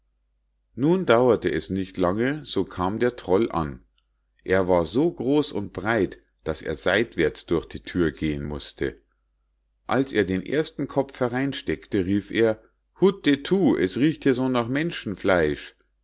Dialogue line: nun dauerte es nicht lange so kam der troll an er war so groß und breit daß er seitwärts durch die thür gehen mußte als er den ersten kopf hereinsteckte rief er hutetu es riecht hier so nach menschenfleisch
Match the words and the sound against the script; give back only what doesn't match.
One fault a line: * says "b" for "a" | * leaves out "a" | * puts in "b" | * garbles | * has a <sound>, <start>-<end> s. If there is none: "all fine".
all fine